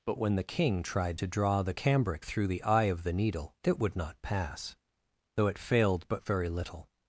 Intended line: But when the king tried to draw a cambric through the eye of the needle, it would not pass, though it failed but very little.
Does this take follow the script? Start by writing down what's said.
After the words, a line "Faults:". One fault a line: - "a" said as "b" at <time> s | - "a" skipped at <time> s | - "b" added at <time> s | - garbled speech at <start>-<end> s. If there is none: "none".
But when the king tried to draw the cambric through the eye of the needle, it would not pass, though it failed but very little.
Faults:
- "a" said as "the" at 1.6 s